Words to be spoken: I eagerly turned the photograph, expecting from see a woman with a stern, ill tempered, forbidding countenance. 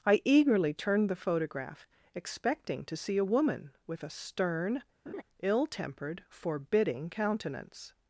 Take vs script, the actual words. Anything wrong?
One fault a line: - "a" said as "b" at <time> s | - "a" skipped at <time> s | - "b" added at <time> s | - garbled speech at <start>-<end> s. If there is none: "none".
- "from" said as "to" at 2.9 s